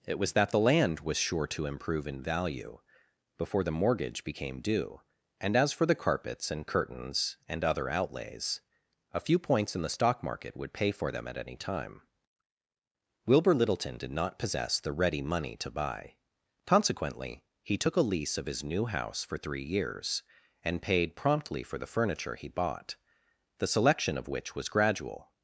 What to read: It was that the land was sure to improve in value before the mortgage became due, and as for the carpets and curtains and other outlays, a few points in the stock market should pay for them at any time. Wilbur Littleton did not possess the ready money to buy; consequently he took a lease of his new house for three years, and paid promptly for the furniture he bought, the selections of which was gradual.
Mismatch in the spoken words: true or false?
true